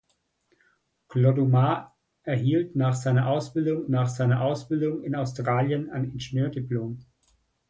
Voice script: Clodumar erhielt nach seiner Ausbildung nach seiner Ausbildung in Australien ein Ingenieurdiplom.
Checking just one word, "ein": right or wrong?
right